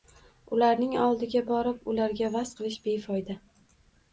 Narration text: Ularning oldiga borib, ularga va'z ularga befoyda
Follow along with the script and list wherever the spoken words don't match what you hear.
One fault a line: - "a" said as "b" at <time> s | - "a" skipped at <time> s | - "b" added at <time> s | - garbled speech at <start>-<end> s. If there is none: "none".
- "ularga" said as "qilish" at 2.6 s